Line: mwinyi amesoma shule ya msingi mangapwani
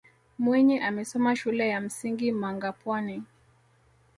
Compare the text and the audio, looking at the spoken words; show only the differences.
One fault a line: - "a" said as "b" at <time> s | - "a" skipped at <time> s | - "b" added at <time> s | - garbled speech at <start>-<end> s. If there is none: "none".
none